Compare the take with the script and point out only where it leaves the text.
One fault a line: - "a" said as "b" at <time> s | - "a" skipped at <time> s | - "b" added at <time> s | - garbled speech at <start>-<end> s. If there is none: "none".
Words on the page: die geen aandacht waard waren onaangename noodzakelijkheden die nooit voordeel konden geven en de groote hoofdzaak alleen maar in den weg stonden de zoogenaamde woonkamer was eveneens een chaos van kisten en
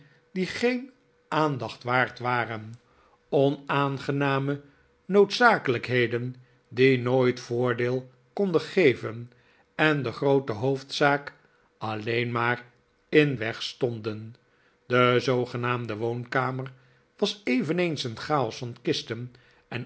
- "den" skipped at 13.3 s